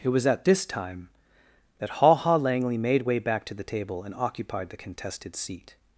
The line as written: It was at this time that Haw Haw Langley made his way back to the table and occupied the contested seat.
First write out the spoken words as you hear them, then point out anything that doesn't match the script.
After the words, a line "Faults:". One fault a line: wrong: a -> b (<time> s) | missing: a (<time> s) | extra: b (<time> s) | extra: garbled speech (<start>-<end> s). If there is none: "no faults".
It was at this time that Haw Haw Langley made way back to the table and occupied the contested seat.
Faults:
missing: his (3.0 s)